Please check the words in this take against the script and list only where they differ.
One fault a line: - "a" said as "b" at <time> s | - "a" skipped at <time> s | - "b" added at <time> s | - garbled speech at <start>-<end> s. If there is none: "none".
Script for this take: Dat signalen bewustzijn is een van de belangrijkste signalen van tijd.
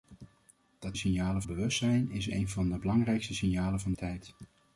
none